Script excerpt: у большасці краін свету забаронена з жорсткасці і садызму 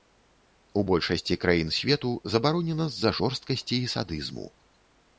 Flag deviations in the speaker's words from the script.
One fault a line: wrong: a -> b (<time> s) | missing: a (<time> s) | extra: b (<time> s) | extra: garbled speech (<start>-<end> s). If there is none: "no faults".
extra: за (3.0 s)